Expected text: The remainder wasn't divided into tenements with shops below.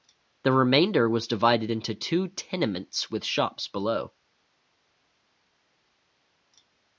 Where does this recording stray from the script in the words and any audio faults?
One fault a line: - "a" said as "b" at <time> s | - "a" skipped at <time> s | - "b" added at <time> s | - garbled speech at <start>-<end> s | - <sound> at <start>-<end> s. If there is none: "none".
- "wasn't" said as "was" at 1.1 s
- "two" added at 1.9 s